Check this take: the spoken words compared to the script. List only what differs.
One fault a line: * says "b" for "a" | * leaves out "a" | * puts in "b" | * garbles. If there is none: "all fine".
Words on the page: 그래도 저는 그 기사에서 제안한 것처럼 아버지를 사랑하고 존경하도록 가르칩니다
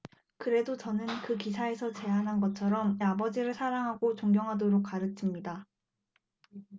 all fine